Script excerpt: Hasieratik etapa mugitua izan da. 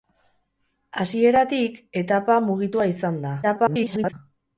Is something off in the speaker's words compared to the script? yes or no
yes